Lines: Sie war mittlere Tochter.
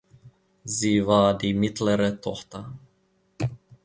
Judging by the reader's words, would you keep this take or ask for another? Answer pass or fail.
fail